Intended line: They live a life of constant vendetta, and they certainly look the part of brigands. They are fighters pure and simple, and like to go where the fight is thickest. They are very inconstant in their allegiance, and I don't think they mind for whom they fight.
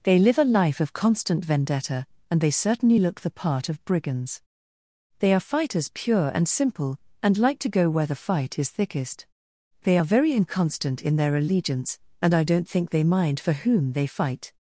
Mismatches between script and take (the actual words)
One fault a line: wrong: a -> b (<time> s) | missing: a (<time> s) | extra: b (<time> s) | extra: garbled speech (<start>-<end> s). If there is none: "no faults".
no faults